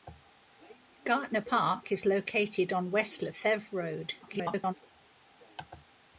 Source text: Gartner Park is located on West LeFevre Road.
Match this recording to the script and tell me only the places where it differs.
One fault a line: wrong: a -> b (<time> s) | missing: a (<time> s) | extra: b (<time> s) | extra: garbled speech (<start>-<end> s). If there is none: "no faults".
extra: garbled speech (4.2-4.7 s)